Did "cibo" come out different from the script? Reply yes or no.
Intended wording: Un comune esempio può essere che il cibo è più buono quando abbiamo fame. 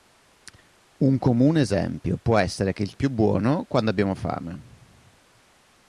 yes